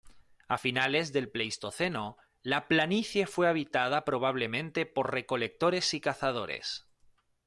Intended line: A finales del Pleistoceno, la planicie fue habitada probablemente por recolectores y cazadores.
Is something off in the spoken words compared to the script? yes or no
no